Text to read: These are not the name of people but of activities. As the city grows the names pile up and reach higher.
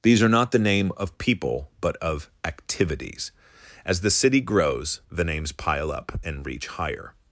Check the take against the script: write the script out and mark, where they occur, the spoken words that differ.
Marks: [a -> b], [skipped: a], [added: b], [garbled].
These are not the name of people but of activities. As the city grows the names pile up and reach higher.